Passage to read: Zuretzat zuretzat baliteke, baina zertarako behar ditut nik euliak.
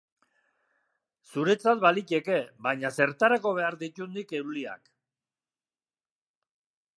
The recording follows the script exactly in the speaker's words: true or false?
false